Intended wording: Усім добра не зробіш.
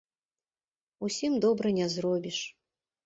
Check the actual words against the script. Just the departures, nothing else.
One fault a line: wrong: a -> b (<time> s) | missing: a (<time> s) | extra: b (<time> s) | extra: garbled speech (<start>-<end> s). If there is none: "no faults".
no faults